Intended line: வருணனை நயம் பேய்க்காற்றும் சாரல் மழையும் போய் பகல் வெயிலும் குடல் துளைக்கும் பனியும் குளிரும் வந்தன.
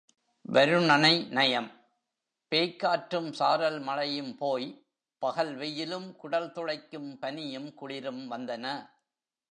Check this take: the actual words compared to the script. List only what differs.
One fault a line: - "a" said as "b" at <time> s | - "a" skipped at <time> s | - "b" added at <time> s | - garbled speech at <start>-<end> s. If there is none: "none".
none